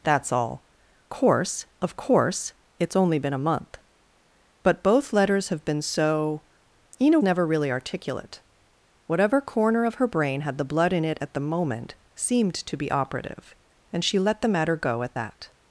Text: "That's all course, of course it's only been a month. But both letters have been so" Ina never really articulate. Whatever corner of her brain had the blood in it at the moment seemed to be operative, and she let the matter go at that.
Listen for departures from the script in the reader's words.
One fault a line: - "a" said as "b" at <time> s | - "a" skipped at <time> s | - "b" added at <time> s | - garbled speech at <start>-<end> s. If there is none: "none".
none